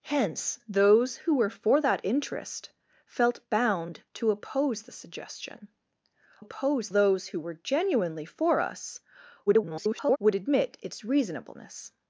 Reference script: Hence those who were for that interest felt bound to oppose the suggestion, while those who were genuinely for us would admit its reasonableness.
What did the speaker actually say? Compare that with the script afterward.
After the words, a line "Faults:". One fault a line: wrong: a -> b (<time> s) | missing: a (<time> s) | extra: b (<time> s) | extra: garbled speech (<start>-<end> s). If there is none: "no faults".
Hence those who were for that interest felt bound to oppose the suggestion, oppose those who were genuinely for us [garbled] would admit its reasonableness.
Faults:
wrong: while -> oppose (6.4 s)
extra: garbled speech (9.5-10.2 s)